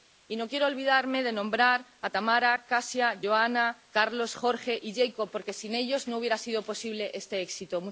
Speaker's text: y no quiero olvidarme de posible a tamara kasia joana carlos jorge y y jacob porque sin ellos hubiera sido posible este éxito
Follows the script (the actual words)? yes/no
no